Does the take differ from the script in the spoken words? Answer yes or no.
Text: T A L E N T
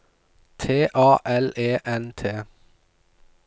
no